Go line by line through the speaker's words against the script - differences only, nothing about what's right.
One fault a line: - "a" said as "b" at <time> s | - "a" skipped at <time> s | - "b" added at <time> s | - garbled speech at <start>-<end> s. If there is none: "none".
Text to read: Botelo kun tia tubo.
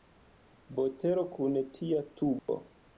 none